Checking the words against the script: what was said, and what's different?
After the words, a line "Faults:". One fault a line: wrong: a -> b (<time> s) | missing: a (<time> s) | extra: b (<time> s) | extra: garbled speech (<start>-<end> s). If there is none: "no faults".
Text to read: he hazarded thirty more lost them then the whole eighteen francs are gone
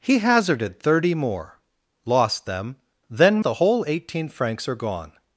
he hazarded thirty more lost them then the whole eighteen francs are gone
Faults:
no faults